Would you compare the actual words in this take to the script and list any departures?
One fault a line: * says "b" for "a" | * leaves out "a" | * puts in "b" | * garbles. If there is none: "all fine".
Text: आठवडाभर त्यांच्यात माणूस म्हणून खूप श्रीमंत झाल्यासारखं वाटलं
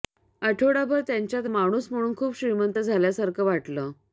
all fine